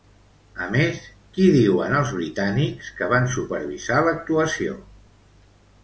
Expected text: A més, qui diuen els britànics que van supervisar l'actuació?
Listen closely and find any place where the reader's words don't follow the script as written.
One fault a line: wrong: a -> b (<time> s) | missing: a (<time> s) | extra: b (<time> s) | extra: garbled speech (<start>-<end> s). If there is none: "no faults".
no faults